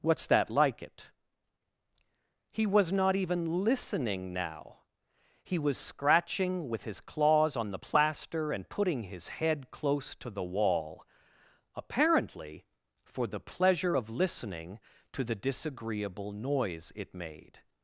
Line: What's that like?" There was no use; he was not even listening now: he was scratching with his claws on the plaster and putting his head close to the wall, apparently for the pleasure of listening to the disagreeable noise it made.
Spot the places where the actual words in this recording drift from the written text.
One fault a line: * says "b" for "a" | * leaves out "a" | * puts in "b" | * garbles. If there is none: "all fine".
* says "It" for "There was no use"